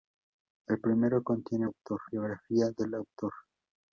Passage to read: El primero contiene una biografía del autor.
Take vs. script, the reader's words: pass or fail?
fail